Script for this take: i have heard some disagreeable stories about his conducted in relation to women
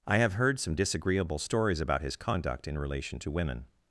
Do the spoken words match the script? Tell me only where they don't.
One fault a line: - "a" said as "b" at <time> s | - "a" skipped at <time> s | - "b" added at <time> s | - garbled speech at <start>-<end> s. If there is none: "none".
- "conducted" said as "conduct" at 2.1 s